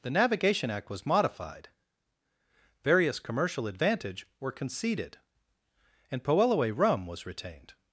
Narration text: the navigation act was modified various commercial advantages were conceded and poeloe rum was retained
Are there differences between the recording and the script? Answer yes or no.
yes